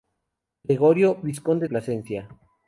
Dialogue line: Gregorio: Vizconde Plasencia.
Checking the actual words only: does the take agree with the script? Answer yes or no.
yes